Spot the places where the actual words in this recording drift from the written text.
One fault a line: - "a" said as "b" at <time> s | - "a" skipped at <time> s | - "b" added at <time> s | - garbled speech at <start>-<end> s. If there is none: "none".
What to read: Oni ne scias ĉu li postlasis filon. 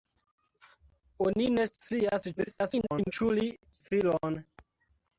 - garbled speech at 2.4-3.1 s
- "postlasis" skipped at 3.5 s